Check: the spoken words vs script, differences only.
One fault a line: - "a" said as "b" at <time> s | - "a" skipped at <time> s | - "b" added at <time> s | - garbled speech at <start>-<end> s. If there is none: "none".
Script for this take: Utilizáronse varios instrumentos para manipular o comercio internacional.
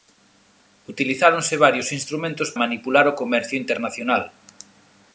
- "para" skipped at 2.5 s